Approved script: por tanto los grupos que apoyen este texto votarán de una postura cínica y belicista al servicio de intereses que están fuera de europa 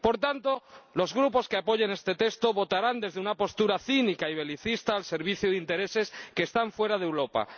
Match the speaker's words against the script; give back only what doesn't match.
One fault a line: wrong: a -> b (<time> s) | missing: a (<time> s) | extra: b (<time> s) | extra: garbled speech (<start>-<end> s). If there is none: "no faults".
wrong: de -> desde (3.0 s)